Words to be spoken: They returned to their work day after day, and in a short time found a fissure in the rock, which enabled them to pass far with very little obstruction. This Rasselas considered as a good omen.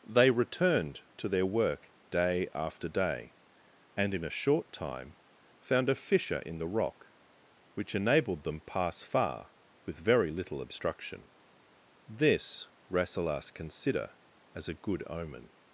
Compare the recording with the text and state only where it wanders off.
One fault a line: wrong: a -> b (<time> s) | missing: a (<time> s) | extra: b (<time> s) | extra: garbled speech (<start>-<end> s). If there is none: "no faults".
missing: to (8.6 s)
wrong: considered -> consider (13.5 s)